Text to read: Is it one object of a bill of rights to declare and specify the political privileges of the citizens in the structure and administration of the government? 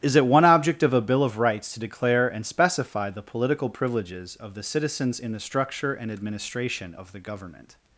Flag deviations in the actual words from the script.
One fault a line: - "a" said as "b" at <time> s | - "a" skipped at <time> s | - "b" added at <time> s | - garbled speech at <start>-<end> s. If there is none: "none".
none